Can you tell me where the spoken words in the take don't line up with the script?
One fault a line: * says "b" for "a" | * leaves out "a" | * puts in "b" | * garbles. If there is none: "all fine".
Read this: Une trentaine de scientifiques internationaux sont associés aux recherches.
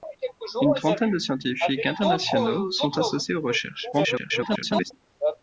* garbles